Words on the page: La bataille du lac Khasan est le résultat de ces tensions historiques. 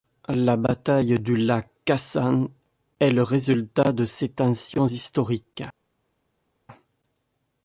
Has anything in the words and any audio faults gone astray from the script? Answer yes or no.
no